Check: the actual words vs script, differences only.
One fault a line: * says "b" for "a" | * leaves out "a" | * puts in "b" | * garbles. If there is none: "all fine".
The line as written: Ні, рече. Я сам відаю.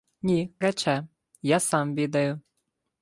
all fine